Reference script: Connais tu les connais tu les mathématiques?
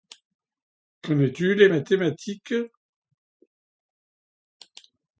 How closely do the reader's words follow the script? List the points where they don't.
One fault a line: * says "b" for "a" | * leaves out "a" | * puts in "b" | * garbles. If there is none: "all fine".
* leaves out "connais tu les"